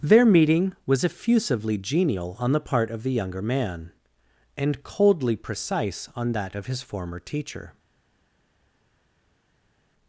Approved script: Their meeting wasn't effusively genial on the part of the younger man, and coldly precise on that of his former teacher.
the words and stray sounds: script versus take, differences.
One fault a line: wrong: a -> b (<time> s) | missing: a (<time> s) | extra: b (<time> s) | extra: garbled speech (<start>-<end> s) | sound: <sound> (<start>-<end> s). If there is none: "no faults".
wrong: wasn't -> was (0.9 s)